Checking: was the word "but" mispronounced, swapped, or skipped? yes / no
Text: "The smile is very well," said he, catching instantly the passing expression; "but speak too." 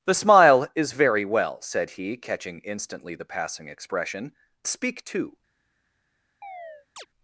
yes